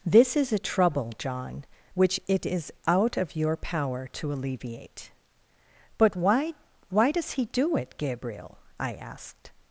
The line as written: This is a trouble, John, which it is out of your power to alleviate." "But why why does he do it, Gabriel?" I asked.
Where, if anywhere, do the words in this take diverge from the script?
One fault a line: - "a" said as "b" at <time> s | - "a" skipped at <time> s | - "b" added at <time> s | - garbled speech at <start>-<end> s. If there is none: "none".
none